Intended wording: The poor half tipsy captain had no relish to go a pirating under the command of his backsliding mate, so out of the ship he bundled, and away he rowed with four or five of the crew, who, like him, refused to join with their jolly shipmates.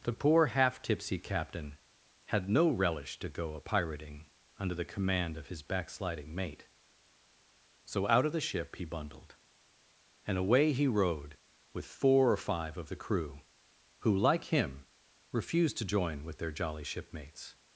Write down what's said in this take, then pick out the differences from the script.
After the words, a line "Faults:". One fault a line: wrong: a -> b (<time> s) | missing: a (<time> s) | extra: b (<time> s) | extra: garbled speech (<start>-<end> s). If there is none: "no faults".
The poor half tipsy captain had no relish to go a pirating under the command of his backsliding mate, so out of the ship he bundled, and away he rowed with four or five of the crew, who, like him, refused to join with their jolly shipmates.
Faults:
no faults